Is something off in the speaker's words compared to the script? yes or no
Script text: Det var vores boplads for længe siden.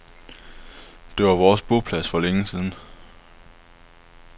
no